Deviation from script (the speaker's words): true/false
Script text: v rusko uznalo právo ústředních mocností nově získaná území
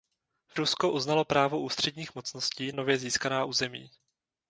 false